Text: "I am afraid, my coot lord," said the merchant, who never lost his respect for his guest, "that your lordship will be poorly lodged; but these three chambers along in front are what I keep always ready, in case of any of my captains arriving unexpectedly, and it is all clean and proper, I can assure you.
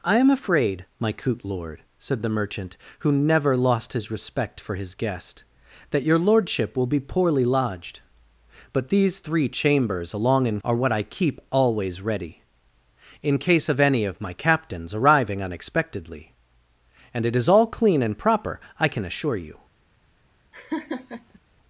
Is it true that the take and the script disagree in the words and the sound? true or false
true